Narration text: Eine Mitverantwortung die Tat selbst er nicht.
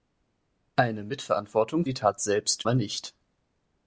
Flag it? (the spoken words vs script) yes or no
no